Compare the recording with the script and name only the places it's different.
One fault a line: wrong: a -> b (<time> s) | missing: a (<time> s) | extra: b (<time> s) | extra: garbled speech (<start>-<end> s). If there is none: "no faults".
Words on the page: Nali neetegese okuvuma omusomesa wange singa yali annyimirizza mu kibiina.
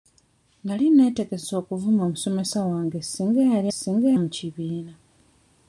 wrong: annyimirizza -> singa (3.8 s)